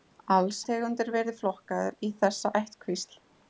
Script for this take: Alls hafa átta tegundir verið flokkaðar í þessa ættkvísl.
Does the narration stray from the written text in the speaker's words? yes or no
yes